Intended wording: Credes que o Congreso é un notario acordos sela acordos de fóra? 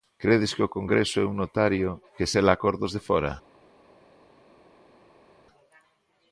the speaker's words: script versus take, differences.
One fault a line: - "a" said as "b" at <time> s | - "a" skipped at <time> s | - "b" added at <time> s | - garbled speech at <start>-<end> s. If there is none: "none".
- "acordos" said as "que" at 2.1 s